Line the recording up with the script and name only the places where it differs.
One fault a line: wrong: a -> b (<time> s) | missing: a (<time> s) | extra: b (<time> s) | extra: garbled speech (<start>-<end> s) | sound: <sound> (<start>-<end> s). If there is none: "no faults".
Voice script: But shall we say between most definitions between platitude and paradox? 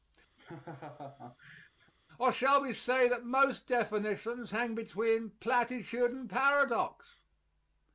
sound: laugh (0.4-1.9 s)
wrong: But -> Or (2.2 s)
wrong: between -> that (3.1 s)
extra: hang (4.5 s)